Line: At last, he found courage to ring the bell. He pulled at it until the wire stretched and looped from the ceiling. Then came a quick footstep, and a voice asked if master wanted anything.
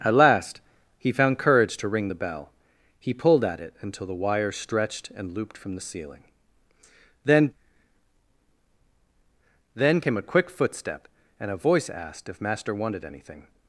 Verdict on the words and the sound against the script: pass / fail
fail